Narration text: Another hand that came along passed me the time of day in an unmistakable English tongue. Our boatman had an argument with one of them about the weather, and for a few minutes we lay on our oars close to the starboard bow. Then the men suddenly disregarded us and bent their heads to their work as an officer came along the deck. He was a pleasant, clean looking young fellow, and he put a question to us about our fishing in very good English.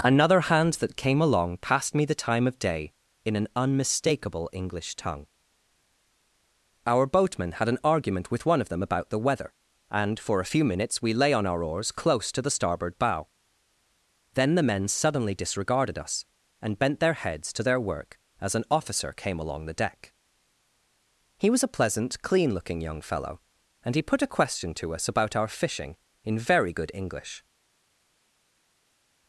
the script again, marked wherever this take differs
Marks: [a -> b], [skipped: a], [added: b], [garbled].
Another hand that came along passed me the time of day in an unmistakable English tongue. Our boatman had an argument with one of them about the weather, and for a few minutes we lay on our oars close to the starboard bow. Then the men suddenly disregarded us and bent their heads to their work as an officer came along the deck. He was a pleasant, clean looking young fellow, and he put a question to us about our fishing in very good English.